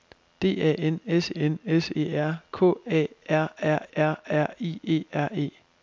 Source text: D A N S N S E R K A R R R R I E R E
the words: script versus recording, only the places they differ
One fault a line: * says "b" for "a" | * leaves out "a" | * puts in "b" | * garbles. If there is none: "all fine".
all fine